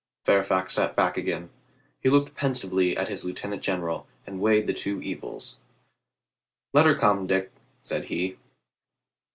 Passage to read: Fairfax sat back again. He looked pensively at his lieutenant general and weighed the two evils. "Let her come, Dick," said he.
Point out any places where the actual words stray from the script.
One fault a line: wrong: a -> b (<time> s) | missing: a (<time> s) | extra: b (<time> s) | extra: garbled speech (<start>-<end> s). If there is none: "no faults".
no faults